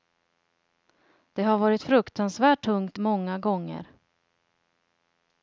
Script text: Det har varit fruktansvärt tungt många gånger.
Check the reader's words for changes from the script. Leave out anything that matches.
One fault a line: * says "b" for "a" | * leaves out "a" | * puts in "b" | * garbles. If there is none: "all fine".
all fine